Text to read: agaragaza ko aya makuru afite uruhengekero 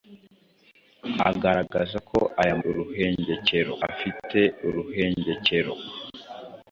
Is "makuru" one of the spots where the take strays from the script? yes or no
yes